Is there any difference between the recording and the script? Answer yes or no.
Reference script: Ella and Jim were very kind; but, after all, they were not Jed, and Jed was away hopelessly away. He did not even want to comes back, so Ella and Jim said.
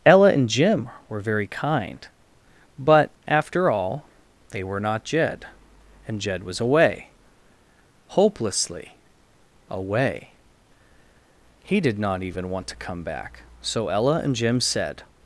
yes